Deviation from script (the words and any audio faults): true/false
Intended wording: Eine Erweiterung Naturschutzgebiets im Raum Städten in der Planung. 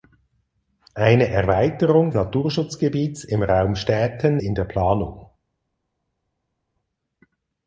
false